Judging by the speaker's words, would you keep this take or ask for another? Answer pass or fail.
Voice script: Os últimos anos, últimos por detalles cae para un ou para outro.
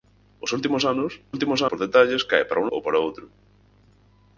pass